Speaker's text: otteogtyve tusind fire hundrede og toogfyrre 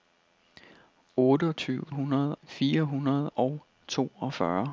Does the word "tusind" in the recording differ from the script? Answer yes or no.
yes